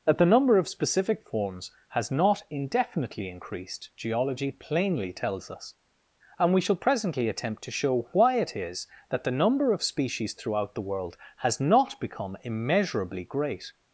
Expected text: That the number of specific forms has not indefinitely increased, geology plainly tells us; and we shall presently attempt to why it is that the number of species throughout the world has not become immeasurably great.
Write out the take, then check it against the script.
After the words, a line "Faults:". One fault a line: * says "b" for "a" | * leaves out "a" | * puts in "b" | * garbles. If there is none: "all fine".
That the number of specific forms has not indefinitely increased, geology plainly tells us; and we shall presently attempt to show why it is that the number of species throughout the world has not become immeasurably great.
Faults:
* puts in "show"